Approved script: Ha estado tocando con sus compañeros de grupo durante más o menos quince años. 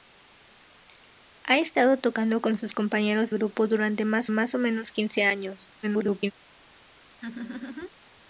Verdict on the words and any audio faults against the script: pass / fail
fail